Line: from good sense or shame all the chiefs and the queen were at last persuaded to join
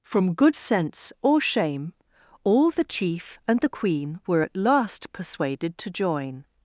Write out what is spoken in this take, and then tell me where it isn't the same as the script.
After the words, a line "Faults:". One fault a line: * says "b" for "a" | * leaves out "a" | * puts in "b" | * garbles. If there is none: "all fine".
from good sense or shame all the chief and the queen were at last persuaded to join
Faults:
* says "chief" for "chiefs"